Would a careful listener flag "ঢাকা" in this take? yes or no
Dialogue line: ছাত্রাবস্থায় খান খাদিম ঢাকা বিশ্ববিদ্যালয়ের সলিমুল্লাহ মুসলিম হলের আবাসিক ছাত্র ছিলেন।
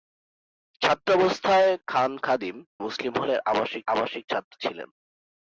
yes